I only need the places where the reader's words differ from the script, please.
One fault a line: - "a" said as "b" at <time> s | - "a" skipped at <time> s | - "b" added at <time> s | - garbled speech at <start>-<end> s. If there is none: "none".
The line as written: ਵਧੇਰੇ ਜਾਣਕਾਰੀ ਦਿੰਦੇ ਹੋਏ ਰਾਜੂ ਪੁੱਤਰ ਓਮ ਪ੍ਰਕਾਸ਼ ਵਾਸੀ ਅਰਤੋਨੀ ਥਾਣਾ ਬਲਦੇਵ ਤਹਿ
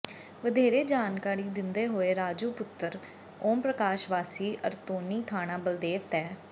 none